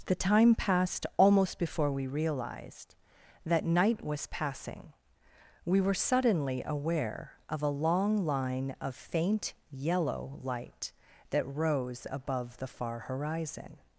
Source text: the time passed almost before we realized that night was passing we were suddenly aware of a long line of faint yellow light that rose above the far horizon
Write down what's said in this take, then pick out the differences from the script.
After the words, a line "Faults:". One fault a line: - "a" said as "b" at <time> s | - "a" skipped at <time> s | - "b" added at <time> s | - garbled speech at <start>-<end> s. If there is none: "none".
the time passed almost before we realized that night was passing we were suddenly aware of a long line of faint yellow light that rose above the far horizon
Faults:
none